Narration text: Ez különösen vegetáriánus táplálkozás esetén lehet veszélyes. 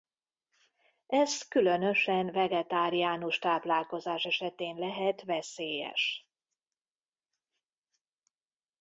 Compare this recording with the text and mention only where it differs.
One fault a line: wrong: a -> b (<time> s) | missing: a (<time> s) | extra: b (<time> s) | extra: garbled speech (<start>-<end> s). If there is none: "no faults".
no faults